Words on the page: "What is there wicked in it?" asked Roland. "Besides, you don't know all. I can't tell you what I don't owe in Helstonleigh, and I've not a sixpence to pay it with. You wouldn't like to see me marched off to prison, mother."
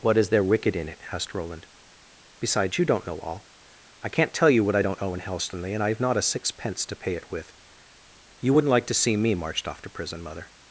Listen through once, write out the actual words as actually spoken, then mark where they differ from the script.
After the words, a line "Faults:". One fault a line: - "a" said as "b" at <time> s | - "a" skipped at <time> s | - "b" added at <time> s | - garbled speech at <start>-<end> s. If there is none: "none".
"What is there wicked in it?" asked Roland. "Besides, you don't know all. I can't tell you what I don't owe in Helstonleigh, and I've not a sixpence to pay it with. You wouldn't like to see me marched off to prison, mother."
Faults:
none